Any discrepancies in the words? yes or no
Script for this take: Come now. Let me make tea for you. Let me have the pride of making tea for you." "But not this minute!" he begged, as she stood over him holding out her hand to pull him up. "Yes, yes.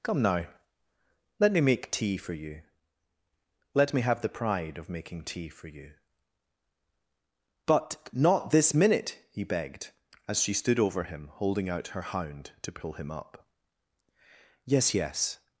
yes